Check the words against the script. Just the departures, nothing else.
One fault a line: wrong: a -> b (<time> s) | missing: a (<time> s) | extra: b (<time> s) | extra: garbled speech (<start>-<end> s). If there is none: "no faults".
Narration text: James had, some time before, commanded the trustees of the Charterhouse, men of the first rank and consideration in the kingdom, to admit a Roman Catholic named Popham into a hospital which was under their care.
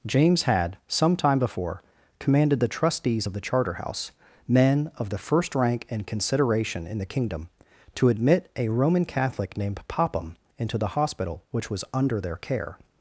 wrong: a -> the (10.8 s)